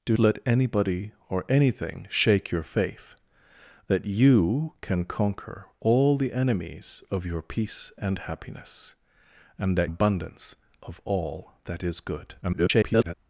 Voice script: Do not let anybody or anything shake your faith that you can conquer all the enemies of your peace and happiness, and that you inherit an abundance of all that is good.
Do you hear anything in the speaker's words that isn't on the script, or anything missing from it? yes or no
yes